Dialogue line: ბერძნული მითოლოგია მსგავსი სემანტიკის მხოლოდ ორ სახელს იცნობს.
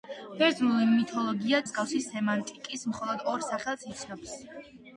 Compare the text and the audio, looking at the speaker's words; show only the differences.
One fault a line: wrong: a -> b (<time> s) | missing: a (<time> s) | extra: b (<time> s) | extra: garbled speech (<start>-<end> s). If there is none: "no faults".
no faults